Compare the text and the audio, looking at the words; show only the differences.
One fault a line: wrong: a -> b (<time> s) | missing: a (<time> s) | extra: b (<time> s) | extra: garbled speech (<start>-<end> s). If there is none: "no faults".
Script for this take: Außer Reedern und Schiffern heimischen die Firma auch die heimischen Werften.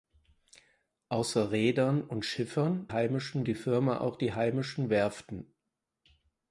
no faults